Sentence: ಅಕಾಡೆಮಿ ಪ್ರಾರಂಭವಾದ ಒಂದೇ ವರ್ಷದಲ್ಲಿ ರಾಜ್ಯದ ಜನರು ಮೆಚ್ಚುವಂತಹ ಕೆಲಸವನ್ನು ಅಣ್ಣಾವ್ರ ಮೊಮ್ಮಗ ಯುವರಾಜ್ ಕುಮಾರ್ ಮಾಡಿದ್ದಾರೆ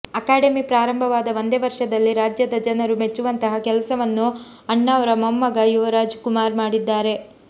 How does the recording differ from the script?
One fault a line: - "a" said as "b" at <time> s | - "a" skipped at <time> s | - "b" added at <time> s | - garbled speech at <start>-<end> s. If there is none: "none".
none